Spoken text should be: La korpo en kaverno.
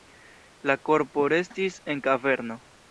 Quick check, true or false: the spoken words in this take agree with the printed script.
false